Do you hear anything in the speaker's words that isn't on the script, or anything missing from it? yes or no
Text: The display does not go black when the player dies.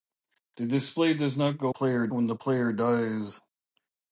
yes